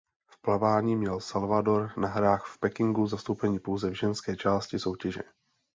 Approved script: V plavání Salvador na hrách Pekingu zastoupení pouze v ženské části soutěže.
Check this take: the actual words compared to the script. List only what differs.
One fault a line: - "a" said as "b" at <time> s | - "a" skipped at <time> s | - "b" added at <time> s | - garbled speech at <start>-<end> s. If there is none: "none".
- "měl" added at 0.9 s
- "v" added at 2.5 s